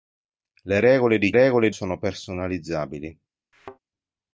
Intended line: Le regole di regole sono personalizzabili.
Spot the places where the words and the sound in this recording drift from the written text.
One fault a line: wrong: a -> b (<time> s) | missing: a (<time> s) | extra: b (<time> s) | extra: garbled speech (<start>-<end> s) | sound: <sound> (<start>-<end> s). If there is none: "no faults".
sound: thud (3.5-3.8 s)